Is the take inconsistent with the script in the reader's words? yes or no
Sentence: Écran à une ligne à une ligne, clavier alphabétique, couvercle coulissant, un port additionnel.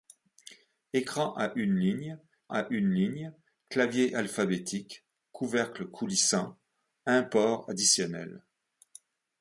no